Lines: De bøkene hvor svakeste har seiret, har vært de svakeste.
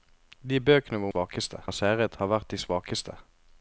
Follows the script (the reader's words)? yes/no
yes